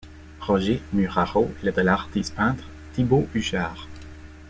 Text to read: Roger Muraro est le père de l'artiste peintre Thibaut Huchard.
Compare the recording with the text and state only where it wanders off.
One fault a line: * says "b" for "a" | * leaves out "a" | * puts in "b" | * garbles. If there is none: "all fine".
* leaves out "père"